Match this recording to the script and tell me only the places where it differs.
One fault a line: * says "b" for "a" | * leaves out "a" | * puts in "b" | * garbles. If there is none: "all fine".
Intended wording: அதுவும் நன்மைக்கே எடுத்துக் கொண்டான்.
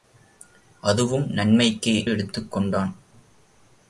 all fine